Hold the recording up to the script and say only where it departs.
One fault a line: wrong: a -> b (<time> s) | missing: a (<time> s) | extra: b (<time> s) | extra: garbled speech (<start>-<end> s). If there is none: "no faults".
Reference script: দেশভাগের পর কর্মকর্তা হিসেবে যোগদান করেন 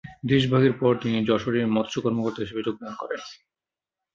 extra: তিনি যশোরে মৎস্য (1.0 s)